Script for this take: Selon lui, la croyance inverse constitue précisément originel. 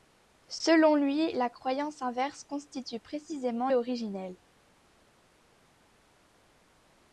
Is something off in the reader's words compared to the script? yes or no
no